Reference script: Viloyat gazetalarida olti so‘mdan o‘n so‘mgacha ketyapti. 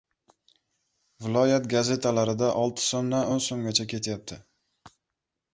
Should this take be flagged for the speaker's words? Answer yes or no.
no